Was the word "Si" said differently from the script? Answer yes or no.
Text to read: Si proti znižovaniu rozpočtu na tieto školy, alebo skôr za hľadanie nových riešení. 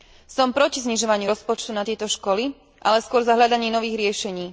yes